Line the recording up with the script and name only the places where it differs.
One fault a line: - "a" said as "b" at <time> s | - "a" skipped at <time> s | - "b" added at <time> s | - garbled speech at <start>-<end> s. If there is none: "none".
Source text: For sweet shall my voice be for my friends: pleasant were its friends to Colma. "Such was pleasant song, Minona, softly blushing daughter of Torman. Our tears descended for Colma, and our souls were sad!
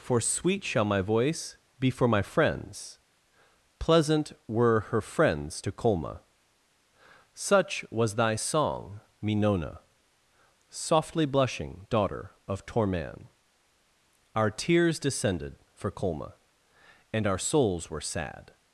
- "its" said as "her" at 4.9 s
- "pleasant" said as "thy" at 8.1 s